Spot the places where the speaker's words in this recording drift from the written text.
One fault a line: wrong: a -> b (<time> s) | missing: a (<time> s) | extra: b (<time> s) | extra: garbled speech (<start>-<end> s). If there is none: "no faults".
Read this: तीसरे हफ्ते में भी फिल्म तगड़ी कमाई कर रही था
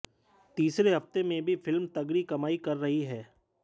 wrong: था -> है (3.0 s)